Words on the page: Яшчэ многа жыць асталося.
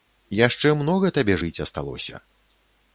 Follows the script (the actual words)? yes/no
no